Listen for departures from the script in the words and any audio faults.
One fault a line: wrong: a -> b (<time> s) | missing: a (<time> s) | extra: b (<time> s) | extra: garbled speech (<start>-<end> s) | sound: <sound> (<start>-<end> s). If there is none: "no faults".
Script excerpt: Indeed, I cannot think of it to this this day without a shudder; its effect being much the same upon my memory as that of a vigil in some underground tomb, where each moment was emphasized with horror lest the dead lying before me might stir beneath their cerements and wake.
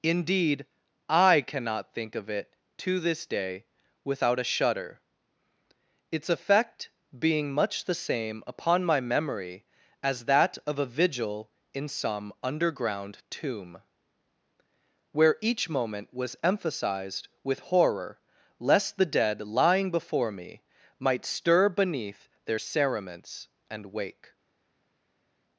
missing: this (3.2 s)